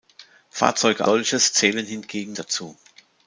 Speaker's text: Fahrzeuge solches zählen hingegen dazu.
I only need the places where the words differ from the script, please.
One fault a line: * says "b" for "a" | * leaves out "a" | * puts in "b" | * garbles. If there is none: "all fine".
all fine